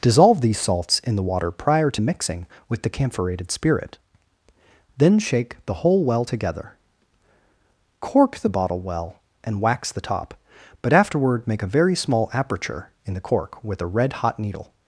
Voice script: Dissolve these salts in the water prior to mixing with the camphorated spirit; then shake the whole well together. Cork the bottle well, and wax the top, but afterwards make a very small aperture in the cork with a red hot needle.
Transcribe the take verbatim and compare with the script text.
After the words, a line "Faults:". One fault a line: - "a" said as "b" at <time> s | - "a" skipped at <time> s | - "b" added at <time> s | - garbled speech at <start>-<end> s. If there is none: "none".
Dissolve these salts in the water prior to mixing with the camphorated spirit; then shake the whole well together. Cork the bottle well, and wax the top, but afterward make a very small aperture in the cork with a red hot needle.
Faults:
- "afterwards" said as "afterward" at 10.9 s